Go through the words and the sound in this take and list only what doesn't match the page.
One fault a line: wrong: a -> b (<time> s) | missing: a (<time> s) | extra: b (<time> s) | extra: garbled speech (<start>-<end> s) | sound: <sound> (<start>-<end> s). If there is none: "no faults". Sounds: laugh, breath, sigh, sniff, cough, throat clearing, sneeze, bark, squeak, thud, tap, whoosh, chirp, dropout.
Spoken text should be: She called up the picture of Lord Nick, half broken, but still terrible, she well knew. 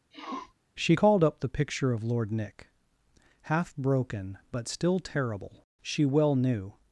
sound: sniff (0.1-0.5 s)